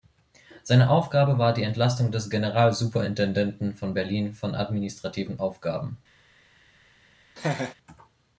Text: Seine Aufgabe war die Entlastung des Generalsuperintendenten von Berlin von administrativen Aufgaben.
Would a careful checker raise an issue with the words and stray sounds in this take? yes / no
yes